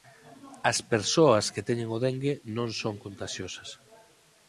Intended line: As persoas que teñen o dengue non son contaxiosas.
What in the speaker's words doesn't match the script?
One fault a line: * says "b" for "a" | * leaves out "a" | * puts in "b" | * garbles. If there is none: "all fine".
all fine